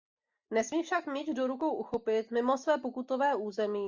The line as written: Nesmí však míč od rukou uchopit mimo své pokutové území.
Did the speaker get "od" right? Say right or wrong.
wrong